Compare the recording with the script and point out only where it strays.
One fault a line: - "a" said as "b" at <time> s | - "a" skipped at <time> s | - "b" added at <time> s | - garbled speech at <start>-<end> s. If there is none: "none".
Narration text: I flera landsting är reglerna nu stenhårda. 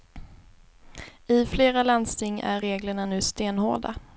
none